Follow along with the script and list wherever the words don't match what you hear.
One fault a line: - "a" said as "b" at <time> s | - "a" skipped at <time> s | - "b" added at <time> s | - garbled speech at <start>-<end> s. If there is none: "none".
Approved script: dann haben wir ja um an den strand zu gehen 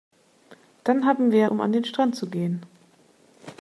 none